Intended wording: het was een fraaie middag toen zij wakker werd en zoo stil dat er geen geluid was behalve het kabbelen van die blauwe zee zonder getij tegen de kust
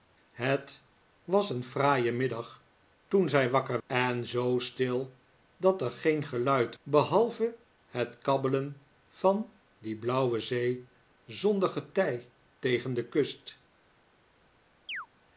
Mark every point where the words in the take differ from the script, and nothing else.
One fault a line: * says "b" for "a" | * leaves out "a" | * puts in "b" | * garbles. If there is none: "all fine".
* leaves out "werd"
* leaves out "was"